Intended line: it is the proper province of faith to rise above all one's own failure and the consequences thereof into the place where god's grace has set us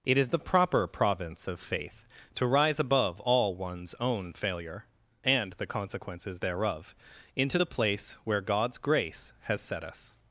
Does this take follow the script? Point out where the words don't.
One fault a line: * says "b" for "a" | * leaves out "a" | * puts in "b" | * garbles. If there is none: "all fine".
all fine